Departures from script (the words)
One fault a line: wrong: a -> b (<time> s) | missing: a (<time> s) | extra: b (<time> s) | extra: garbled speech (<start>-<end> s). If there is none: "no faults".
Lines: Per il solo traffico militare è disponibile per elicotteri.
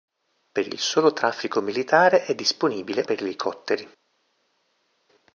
no faults